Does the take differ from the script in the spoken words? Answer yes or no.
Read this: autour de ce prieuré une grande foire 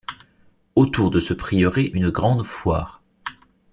no